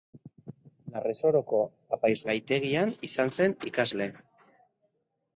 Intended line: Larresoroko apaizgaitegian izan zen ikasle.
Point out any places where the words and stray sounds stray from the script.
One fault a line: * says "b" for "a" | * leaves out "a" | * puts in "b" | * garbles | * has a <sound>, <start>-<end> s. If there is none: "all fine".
all fine